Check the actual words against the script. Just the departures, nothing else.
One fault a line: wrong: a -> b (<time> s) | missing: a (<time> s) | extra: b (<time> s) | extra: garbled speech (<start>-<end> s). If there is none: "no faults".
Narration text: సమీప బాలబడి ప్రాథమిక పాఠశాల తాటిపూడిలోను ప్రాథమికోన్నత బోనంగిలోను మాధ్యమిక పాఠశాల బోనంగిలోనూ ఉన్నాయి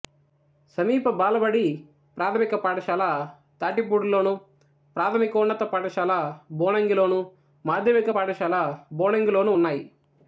extra: పాఠశాల (5.6 s)